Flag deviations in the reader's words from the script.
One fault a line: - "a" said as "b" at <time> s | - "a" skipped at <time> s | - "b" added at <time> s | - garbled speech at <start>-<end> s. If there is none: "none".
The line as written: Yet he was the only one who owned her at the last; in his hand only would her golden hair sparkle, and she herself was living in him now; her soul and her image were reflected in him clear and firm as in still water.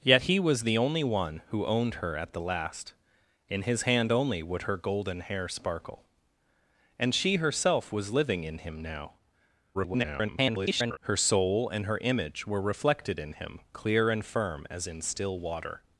- garbled speech at 9.7-11.0 s